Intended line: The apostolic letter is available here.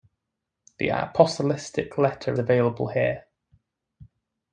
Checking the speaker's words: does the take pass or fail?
fail